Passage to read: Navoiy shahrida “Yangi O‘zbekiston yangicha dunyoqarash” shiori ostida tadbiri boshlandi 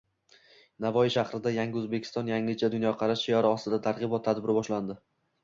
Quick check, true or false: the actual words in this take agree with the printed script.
false